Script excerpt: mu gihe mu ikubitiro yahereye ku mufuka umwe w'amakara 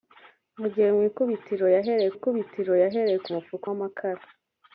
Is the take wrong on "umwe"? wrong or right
wrong